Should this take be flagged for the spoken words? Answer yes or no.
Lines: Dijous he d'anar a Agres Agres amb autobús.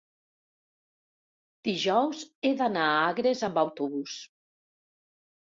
yes